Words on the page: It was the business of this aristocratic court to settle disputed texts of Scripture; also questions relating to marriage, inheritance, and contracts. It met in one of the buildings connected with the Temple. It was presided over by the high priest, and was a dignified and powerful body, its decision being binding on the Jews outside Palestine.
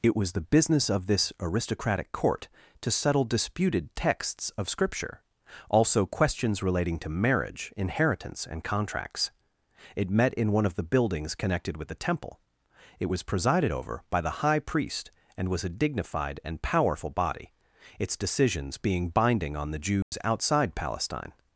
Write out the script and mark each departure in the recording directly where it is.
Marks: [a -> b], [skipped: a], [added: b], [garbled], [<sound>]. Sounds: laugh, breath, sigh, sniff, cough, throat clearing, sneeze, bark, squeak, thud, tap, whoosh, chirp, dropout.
It was the business of this aristocratic court to settle disputed texts of Scripture; also questions relating to marriage, inheritance, and contracts. It met in one of the buildings connected with the Temple. It was presided over by the high priest, and was a dignified and powerful body, its [decision -> decisions] being binding on the Jews [dropout] outside Palestine.